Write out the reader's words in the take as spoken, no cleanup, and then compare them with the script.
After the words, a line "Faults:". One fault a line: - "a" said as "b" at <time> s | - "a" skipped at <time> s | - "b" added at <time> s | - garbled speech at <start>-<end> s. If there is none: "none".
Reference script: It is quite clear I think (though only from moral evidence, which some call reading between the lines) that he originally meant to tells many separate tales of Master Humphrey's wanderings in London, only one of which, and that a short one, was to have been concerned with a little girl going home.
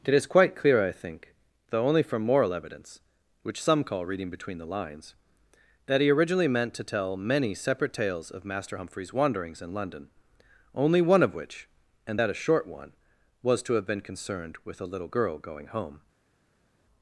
It is quite clear I think (though only from moral evidence, which some call reading between the lines) that he originally meant to tell many separate tales of Master Humphrey's wanderings in London, only one of which, and that a short one, was to have been concerned with a little girl going home.
Faults:
- "tells" said as "tell" at 6.8 s